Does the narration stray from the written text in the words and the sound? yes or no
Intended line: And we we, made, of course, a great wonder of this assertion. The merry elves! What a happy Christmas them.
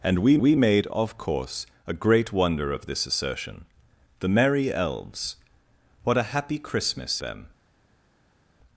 no